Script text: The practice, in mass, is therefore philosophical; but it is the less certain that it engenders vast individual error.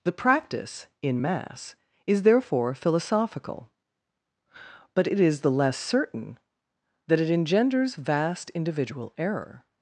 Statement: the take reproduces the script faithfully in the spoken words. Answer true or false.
true